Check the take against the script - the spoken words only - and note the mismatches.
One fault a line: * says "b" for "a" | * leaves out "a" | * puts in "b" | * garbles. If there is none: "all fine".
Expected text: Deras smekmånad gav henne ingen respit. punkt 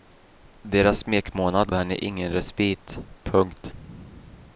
* leaves out "gav"